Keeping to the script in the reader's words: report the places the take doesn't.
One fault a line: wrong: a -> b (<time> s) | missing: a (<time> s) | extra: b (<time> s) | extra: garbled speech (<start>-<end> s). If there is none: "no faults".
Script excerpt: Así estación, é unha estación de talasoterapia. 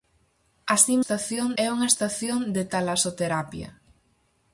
no faults